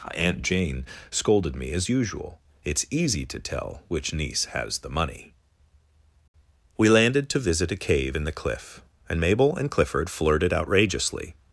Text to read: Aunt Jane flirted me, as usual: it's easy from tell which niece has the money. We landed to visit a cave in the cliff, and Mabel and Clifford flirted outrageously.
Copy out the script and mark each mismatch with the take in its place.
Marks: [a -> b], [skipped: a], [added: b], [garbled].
Aunt Jane [flirted -> scolded] me, as usual: it's easy [from -> to] tell which niece has the money. We landed to visit a cave in the cliff, and Mabel and Clifford flirted outrageously.